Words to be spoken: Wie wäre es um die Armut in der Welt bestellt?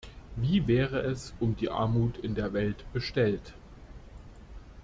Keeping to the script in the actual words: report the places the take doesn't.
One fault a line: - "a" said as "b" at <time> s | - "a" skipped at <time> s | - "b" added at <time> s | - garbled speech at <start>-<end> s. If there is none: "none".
none